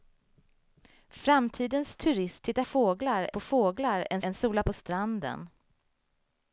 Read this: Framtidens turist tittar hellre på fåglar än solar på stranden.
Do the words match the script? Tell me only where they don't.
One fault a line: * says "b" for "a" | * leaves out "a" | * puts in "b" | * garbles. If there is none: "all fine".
* says "fåglar" for "hellre"
* puts in "än"